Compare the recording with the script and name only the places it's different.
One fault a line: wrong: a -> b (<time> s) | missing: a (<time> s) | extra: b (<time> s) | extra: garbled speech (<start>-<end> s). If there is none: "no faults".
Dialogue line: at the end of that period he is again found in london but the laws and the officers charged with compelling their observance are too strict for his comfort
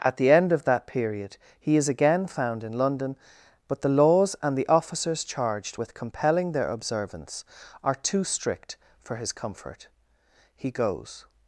extra: he goes (10.5 s)